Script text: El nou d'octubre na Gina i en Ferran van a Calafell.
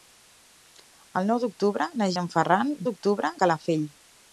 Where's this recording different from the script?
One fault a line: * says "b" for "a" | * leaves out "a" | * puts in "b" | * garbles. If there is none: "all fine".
* leaves out "Gina"
* says "d'octubre" for "van"